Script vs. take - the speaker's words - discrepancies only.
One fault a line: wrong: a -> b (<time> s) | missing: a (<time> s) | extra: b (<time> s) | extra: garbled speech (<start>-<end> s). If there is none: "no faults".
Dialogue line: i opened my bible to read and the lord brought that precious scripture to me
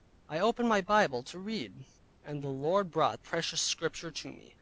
missing: that (3.2 s)